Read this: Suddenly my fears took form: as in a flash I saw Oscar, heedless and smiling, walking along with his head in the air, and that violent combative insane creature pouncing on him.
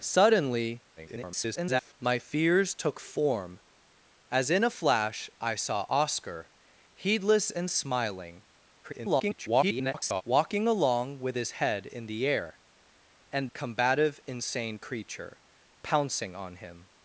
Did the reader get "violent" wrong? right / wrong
wrong